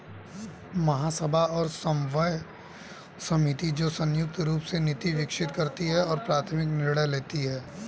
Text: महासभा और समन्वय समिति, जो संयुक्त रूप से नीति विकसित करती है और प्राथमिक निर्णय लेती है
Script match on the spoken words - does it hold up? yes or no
yes